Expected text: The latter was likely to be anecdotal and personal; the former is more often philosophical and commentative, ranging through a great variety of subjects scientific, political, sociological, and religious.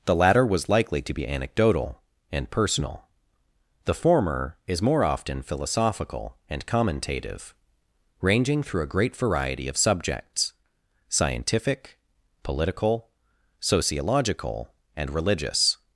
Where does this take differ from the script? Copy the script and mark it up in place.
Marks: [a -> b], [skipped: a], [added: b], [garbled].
The latter was likely to be anecdotal and personal; the former is more often philosophical and commentative, ranging through a great variety of subjects scientific, political, sociological, and religious.